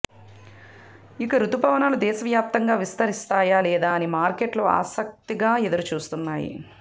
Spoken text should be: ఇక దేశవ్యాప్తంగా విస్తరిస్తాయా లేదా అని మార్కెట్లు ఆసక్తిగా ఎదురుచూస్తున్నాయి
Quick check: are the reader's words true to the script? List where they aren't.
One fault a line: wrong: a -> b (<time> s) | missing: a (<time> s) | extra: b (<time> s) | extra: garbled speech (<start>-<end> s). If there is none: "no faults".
extra: రుతుపవనాలు (1.4 s)